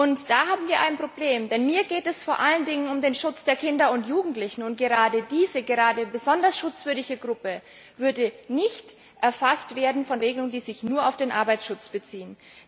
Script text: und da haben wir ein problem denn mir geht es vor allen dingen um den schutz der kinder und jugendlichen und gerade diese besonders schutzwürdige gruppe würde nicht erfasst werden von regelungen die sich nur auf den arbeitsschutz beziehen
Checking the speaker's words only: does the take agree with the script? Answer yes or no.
yes